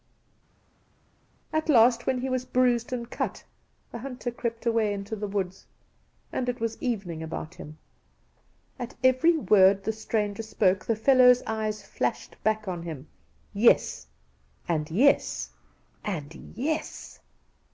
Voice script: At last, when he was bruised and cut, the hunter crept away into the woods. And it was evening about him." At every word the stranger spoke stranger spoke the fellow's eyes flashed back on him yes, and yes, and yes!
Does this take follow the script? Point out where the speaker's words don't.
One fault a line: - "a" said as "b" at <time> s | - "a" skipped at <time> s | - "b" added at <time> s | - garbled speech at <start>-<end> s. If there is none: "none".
- "stranger spoke" skipped at 10.8 s